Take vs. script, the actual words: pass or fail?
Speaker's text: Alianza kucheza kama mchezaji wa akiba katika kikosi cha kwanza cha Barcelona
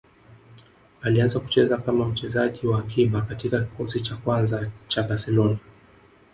pass